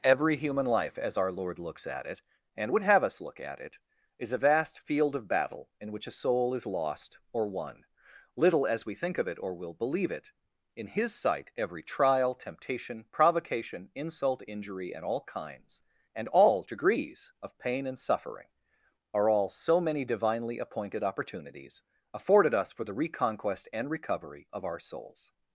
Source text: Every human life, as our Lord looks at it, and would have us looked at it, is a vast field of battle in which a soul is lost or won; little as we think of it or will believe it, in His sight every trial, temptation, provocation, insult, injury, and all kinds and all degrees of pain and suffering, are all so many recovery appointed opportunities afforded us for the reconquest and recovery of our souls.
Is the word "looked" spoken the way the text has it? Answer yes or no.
no